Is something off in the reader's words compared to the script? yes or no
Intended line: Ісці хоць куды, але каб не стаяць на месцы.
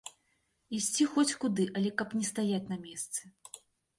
no